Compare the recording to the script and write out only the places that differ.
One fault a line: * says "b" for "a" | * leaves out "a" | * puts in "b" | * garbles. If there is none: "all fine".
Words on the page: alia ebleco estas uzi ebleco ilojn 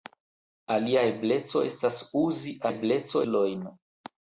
all fine